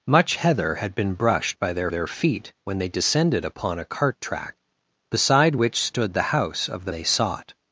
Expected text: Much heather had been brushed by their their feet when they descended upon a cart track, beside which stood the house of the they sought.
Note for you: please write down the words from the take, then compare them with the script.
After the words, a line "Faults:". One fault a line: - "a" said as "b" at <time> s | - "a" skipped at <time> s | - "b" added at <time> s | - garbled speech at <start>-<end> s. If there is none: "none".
Much heather had been brushed by their their feet when they descended upon a cart track, beside which stood the house of the they sought.
Faults:
none